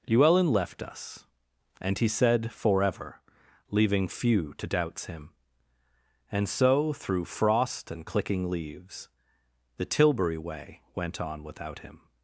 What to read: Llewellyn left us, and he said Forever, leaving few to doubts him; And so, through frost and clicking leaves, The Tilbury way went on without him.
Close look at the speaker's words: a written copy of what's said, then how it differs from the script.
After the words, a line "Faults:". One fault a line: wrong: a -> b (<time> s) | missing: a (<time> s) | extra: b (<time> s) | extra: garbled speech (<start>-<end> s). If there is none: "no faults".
Llewellyn left us, and he said Forever, leaving few to doubts him; And so, through frost and clicking leaves, The Tilbury way went on without him.
Faults:
no faults